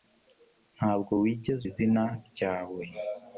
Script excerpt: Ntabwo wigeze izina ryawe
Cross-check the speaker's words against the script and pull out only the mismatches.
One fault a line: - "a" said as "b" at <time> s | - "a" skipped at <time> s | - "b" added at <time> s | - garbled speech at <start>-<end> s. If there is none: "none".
none